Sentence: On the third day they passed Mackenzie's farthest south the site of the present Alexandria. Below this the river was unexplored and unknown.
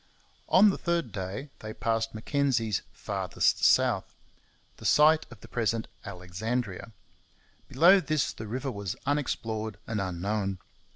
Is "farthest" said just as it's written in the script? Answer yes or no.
yes